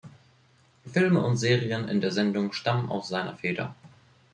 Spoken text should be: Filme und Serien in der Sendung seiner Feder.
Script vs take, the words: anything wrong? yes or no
yes